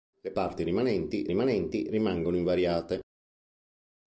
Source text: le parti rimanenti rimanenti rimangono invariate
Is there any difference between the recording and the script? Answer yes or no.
no